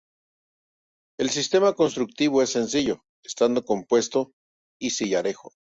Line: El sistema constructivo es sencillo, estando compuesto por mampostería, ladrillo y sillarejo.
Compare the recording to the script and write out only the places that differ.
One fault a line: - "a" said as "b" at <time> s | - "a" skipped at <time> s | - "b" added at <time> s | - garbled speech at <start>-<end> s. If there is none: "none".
- "por mampostería ladrillo" skipped at 4.3 s